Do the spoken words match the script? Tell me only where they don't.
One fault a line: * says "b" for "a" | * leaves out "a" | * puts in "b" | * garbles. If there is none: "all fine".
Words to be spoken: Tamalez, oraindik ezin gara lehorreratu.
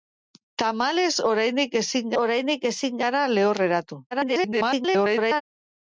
* puts in "oraindik ezin"
* garbles